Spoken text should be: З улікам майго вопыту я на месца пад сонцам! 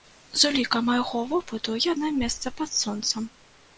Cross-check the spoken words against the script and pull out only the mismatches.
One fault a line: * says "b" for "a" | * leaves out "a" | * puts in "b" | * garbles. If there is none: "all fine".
all fine